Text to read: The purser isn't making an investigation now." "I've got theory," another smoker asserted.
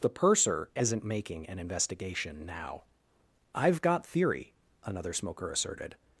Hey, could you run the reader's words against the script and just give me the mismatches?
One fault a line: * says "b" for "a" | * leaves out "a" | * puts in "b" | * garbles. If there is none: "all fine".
all fine